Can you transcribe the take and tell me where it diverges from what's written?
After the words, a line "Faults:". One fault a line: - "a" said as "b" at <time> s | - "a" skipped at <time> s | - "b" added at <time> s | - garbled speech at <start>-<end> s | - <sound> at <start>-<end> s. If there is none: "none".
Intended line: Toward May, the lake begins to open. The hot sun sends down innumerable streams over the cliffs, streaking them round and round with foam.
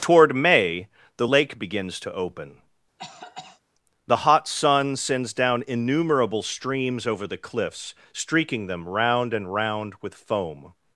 Toward May, the lake begins to open. The hot sun sends down innumerable streams over the cliffs, streaking them round and round with foam.
Faults:
- cough at 3.0-3.6 s